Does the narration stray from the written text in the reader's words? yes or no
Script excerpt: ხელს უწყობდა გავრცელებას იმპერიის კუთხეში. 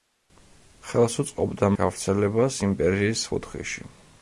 no